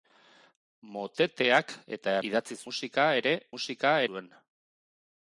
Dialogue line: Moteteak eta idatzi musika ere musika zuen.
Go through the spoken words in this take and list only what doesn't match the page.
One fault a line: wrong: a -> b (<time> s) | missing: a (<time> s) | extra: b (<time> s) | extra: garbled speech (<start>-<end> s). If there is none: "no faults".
no faults